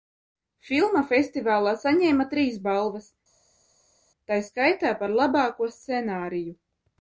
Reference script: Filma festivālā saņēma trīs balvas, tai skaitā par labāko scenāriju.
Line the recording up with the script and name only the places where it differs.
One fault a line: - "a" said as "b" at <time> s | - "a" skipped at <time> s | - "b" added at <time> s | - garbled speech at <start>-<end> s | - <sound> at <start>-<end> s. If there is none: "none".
none